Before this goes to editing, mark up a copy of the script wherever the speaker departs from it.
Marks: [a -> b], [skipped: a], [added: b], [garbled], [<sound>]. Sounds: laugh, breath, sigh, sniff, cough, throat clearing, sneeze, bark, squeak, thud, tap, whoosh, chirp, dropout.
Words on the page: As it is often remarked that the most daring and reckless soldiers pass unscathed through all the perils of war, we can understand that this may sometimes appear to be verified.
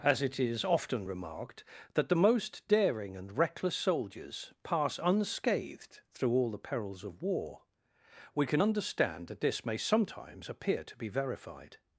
As it is often remarked that the most daring and reckless soldiers pass unscathed through all the perils of war, we can understand that this may sometimes appear to be verified.